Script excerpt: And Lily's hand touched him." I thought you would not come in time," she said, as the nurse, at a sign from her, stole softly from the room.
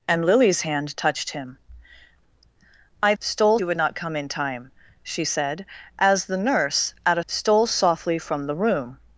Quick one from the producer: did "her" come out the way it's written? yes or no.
no